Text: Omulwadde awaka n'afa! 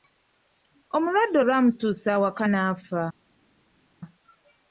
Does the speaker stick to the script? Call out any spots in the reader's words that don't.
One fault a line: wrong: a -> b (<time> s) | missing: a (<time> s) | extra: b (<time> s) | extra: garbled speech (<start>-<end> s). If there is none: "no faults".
extra: olwamutuusa (1.4 s)